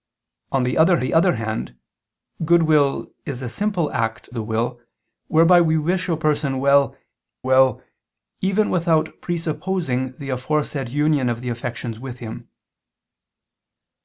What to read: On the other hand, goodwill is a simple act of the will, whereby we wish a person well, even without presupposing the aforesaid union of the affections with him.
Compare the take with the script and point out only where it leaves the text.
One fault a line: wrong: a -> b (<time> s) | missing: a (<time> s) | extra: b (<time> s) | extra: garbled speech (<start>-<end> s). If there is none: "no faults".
extra: the other (1.0 s)
missing: of (4.3 s)
extra: well (7.4 s)